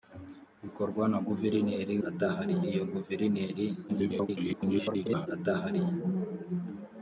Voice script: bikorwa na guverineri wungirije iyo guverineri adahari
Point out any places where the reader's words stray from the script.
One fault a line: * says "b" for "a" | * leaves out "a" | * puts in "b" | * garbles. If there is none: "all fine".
* says "adahari" for "wungirije"
* garbles